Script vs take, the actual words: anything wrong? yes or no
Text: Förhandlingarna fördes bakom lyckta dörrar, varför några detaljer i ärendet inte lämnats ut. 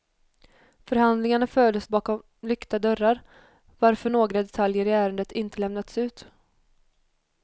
no